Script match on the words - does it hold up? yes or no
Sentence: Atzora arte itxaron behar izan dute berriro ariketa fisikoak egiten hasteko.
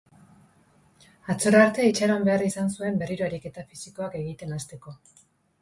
no